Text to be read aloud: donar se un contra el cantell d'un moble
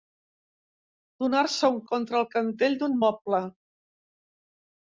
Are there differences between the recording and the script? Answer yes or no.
no